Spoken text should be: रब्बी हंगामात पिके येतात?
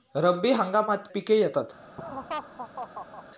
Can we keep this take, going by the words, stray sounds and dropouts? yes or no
no